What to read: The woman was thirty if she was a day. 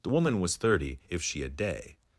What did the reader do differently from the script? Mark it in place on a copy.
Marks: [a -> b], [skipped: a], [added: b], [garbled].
The woman was thirty if she [skipped: was] a day.